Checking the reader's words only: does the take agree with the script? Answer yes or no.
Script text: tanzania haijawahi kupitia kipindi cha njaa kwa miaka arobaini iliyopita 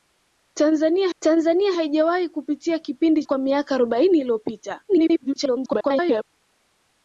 no